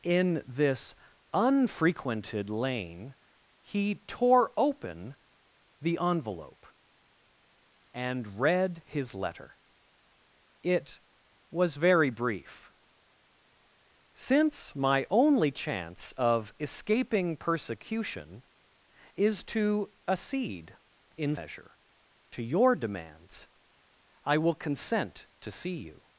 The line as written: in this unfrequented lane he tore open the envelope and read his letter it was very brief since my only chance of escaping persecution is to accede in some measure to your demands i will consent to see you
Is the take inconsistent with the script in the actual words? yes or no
yes